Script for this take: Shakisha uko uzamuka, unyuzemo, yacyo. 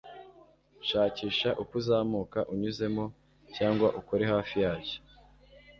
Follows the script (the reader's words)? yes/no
no